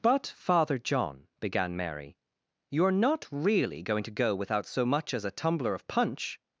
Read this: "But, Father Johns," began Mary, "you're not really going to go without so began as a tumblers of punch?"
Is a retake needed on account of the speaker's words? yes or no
yes